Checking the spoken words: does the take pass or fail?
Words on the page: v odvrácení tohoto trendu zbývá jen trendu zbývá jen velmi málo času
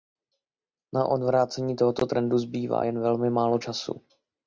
fail